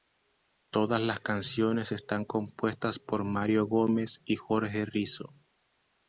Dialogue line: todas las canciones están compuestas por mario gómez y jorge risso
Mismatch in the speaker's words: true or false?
false